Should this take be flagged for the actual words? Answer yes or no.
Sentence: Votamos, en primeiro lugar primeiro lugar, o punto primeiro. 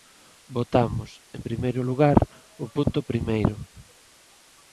yes